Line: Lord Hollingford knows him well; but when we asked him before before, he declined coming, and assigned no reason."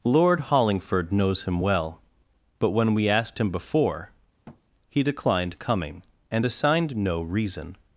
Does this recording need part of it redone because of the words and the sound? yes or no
yes